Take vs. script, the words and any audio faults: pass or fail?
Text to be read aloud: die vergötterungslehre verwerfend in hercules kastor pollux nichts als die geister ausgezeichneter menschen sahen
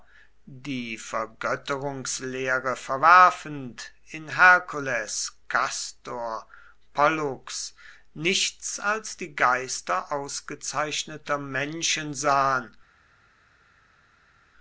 pass